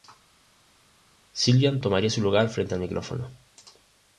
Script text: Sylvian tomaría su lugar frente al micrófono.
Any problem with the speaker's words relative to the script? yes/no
no